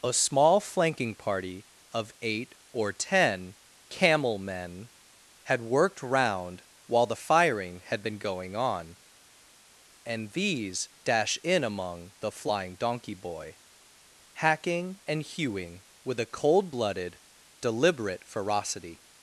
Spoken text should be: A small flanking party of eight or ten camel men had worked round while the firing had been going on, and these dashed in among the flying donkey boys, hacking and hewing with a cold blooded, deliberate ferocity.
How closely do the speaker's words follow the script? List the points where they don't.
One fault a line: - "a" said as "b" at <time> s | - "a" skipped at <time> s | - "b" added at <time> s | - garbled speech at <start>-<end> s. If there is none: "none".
- "dashed" said as "dash" at 11.0 s
- "boys" said as "boy" at 13.1 s